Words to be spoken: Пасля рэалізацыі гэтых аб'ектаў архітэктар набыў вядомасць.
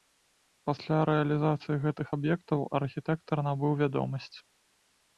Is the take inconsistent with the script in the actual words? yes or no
no